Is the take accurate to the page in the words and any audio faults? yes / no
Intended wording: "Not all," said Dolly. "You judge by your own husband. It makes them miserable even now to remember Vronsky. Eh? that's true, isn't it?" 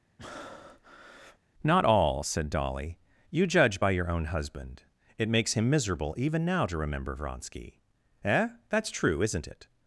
no